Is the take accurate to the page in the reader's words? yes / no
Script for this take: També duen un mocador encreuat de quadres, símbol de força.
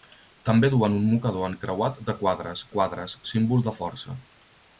no